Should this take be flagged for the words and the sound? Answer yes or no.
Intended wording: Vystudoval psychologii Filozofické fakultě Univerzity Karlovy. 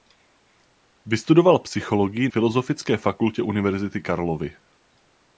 no